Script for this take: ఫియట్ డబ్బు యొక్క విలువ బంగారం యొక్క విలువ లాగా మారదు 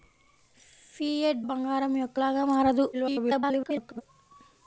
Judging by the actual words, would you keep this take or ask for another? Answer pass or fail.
fail